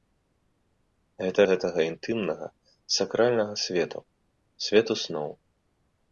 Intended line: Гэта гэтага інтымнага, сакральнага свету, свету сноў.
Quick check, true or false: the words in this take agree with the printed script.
true